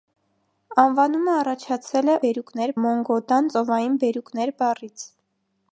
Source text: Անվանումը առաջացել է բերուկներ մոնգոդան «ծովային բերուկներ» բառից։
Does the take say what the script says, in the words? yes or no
yes